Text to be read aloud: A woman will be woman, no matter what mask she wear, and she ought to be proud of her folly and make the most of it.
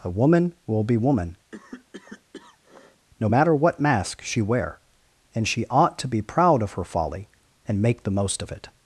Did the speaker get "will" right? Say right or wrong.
right